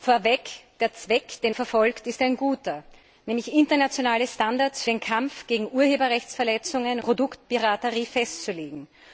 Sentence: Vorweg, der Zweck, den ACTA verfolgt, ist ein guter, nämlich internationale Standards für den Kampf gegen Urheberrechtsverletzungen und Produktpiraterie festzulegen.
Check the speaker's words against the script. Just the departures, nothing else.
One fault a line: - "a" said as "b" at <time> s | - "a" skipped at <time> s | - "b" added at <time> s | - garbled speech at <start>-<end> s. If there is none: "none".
- "ACTA" skipped at 1.5 s
- "für" skipped at 4.8 s
- "und" skipped at 7.0 s